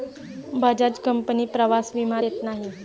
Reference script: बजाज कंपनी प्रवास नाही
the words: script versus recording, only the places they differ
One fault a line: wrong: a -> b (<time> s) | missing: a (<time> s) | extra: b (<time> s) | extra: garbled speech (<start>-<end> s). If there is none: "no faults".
extra: विमा देत (1.9 s)